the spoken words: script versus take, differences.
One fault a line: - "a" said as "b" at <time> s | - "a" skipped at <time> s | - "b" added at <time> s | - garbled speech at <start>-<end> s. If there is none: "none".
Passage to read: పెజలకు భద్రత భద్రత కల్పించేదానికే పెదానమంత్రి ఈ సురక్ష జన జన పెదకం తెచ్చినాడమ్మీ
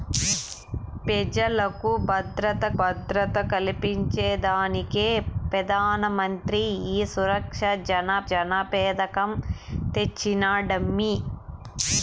none